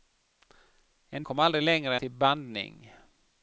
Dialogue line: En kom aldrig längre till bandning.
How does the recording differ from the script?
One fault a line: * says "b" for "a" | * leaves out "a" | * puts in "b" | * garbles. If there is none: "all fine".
all fine